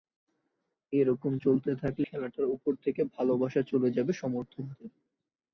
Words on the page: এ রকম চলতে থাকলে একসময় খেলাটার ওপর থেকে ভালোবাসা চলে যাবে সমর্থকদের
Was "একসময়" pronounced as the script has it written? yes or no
no